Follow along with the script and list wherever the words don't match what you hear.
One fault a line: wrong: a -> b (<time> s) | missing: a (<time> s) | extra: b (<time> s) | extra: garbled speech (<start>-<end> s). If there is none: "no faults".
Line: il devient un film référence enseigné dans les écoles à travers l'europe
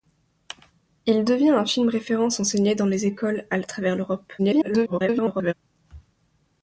extra: garbled speech (4.4-5.5 s)